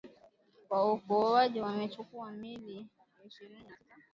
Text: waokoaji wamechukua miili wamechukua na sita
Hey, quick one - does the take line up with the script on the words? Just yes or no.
no